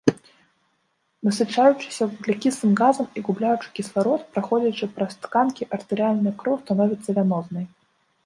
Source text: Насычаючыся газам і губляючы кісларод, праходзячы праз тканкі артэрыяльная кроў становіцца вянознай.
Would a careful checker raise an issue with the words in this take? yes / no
yes